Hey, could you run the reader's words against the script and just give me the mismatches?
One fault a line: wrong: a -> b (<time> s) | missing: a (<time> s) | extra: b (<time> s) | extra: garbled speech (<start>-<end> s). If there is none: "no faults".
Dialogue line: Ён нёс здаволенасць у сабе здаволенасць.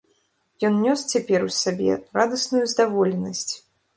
wrong: здаволенасць -> цяпер (1.1 s)
extra: радасную (2.2 s)